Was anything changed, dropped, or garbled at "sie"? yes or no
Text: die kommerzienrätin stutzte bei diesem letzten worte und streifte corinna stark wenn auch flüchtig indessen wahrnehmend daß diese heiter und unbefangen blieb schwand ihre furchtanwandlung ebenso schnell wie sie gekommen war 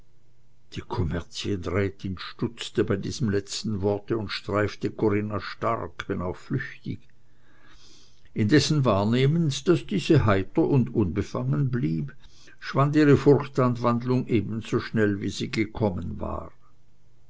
no